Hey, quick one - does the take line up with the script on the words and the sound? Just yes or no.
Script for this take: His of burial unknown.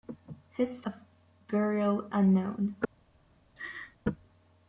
no